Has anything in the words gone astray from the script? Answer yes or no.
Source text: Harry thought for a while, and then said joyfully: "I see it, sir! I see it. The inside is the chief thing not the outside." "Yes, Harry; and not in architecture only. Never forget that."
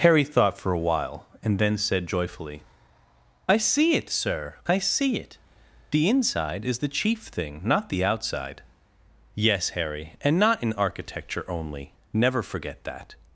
no